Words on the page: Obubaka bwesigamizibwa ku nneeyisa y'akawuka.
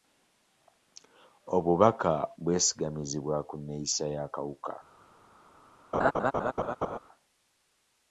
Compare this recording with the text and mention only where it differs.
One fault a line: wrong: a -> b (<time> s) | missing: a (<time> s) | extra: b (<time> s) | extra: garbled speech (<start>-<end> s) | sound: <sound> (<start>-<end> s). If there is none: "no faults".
sound: laugh (5.9-7.0 s)